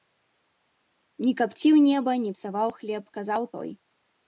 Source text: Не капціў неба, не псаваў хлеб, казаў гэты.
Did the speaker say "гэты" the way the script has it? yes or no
no